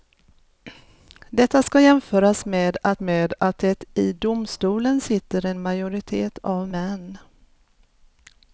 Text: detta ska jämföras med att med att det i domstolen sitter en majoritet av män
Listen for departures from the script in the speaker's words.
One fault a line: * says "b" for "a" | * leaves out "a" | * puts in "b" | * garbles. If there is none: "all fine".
all fine